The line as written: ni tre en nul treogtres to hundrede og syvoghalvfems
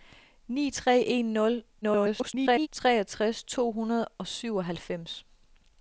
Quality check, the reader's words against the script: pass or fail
fail